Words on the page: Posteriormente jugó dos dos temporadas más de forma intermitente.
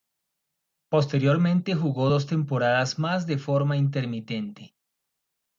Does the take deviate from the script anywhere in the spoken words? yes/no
yes